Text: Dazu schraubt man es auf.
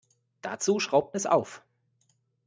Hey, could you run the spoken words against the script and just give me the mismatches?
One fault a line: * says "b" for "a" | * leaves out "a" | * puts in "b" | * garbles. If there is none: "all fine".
* leaves out "man"